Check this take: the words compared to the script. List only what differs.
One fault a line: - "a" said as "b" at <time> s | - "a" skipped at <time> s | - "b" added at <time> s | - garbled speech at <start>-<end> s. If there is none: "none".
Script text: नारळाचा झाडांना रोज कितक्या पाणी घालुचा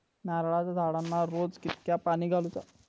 none